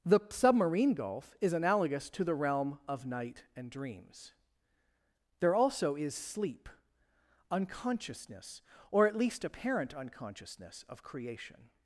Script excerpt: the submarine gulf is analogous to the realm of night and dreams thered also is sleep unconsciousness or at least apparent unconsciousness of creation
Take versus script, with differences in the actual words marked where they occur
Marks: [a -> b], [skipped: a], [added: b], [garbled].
the submarine gulf is analogous to the realm of night and dreams [thered -> there] also is sleep unconsciousness or at least apparent unconsciousness of creation